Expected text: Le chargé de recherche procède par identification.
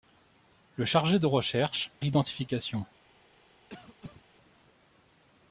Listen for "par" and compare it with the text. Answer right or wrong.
wrong